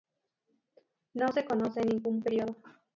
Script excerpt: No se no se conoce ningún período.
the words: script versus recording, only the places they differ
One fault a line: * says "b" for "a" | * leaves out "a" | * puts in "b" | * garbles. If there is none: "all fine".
* leaves out "no se"